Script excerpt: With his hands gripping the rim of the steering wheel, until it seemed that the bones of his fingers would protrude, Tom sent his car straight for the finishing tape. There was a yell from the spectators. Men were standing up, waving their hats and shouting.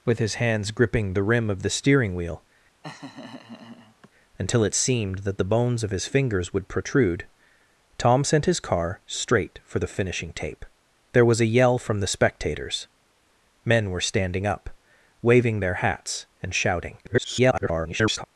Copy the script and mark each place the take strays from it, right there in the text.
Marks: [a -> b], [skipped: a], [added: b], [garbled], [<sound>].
With his hands gripping the rim of the steering wheel, [laugh] until it seemed that the bones of his fingers would protrude, Tom sent his car straight for the finishing tape. There was a yell from the spectators. Men were standing up, waving their hats and shouting. [garbled]